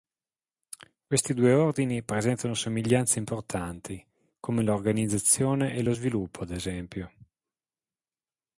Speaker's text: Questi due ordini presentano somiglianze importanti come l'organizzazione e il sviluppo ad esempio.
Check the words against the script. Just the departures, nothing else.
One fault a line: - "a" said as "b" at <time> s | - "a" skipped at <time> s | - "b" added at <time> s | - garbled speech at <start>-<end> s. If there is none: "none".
- "il" said as "lo" at 5.8 s